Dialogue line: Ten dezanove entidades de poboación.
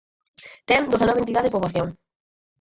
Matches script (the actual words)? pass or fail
fail